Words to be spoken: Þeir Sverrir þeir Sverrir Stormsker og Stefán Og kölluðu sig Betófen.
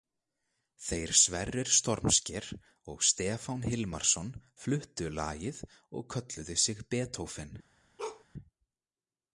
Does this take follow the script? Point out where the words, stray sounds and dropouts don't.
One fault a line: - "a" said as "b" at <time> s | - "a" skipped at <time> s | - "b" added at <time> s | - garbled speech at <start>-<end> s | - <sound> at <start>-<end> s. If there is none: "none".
- "þeir Sverrir" skipped at 1.7 s
- "Hilmarsson fluttu lagið" added at 3.7 s
- bark at 8.0-8.2 s